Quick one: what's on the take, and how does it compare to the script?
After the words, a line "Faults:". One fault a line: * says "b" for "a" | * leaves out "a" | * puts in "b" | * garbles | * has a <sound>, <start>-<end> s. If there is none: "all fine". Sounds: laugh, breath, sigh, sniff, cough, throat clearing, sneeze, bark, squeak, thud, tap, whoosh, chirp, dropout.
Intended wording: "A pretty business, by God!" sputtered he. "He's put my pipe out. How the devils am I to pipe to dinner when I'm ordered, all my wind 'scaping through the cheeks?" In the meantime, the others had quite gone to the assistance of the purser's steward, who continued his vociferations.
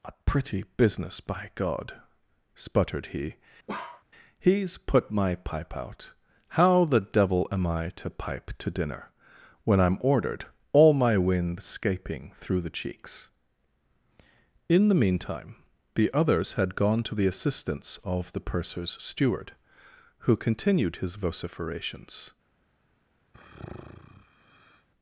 "A pretty business, by God!" sputtered he. "He's put my pipe out. How the devil am I to pipe to dinner when I'm ordered, all my wind 'scaping through the cheeks?" In the meantime, the others had gone to the assistance of the purser's steward, who continued his vociferations.
Faults:
* has a bark, 3.7-4.0 s
* says "devil" for "devils"
* leaves out "quite"
* has a sigh, 23.3-24.9 s